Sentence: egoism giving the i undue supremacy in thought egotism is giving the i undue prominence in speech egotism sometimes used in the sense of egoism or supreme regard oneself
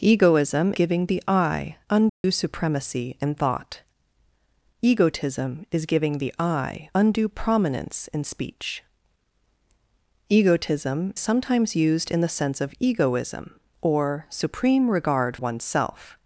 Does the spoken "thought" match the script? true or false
true